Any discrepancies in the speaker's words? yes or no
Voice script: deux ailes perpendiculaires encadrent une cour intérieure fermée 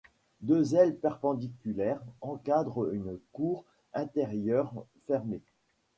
no